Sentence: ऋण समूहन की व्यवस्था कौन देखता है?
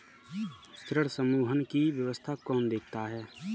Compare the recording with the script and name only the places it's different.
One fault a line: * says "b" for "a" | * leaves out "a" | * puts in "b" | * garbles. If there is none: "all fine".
all fine